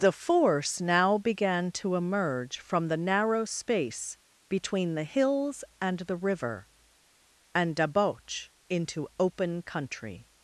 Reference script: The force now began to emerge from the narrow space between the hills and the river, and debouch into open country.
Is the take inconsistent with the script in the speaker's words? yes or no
no